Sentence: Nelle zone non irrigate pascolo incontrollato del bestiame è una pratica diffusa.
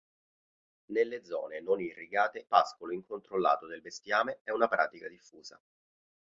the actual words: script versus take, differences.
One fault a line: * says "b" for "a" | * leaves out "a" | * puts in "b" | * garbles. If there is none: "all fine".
all fine